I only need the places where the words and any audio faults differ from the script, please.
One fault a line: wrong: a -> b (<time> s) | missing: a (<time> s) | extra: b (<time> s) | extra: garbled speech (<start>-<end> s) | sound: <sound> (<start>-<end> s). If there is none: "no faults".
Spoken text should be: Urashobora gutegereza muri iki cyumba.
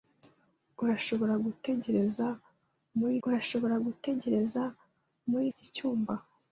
extra: urashobora gutegereza muri (3.3 s)